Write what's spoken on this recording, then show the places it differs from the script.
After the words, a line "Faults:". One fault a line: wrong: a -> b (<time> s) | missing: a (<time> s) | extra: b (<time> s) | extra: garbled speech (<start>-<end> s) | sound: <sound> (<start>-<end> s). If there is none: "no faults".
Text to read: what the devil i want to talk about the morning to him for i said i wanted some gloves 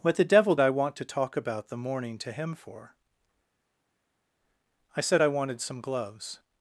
what the devil i want to talk about the morning to him for i said i wanted some gloves
Faults:
no faults